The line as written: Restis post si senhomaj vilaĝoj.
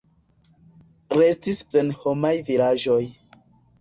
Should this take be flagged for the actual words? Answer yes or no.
yes